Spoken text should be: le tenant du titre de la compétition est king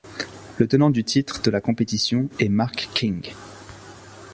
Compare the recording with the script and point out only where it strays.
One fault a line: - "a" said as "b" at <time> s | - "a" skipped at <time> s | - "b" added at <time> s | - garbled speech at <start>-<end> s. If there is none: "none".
- "mark" added at 2.5 s